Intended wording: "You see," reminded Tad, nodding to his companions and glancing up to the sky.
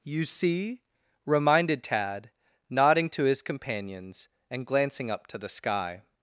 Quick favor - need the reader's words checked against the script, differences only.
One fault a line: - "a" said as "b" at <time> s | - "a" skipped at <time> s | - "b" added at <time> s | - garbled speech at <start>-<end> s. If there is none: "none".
none